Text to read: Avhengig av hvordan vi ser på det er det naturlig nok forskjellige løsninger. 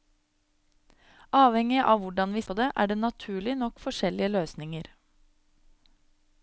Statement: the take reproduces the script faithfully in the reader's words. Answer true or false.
false